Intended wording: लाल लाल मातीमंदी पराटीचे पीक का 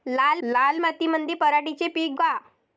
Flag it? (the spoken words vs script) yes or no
no